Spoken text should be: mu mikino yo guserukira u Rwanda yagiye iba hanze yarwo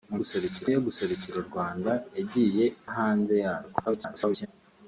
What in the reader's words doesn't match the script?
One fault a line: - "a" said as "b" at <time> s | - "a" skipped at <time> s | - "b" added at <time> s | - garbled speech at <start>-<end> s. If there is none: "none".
- "mikino" said as "guserukira" at 0.2 s
- "iba" skipped at 2.6 s
- garbled speech at 3.9-4.5 s